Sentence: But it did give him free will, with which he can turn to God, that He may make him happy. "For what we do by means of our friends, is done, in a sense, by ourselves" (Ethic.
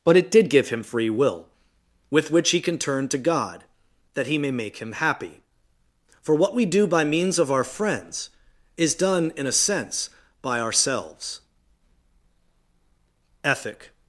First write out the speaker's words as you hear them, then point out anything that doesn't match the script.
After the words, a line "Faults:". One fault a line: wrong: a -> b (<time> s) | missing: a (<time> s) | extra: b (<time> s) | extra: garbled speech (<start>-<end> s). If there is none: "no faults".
But it did give him free will, with which he can turn to God, that He may make him happy. "For what we do by means of our friends, is done, in a sense, by ourselves" (Ethic.
Faults:
no faults